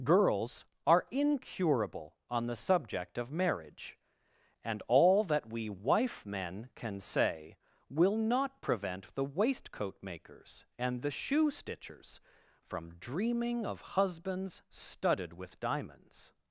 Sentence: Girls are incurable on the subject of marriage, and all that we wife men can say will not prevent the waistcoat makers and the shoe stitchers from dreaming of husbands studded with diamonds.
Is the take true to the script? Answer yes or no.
yes